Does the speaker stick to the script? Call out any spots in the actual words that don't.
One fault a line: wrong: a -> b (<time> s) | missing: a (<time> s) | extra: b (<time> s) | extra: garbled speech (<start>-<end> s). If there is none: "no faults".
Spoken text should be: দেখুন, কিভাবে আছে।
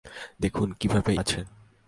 no faults